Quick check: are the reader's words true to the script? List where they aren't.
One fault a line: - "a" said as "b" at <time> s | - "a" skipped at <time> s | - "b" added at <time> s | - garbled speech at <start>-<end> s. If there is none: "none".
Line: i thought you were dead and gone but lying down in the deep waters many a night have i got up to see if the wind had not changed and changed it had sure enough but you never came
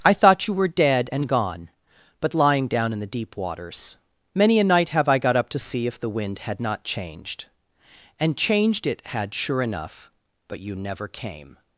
none